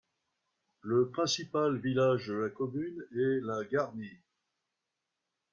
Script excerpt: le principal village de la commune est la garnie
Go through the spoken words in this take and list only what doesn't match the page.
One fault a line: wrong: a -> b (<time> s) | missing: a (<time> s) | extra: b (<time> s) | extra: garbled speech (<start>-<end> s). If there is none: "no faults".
no faults